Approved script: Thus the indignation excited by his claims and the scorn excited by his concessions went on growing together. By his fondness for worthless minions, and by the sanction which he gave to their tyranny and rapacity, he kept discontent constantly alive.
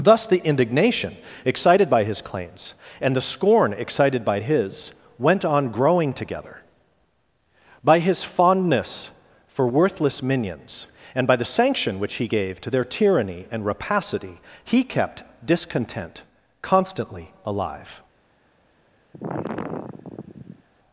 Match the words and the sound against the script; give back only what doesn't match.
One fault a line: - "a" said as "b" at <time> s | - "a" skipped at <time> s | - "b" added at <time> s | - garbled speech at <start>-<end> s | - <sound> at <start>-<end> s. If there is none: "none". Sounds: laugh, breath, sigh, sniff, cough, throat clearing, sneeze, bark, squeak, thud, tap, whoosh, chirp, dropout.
- "concessions" skipped at 4.9 s
- sigh at 19.1-20.6 s